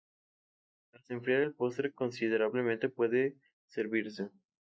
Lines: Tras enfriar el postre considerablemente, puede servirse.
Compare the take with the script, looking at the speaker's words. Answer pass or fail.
pass